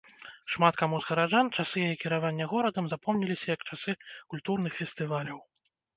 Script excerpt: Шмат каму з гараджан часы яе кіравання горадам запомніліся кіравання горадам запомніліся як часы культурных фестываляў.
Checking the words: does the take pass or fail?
fail